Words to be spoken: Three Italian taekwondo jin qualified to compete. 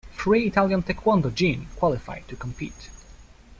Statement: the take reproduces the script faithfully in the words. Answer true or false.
true